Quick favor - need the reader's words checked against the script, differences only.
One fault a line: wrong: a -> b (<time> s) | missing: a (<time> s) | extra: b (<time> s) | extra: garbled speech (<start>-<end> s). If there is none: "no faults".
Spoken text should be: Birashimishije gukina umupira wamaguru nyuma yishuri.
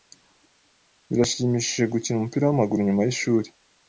no faults